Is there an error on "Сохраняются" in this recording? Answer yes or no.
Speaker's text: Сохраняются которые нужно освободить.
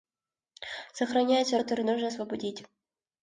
no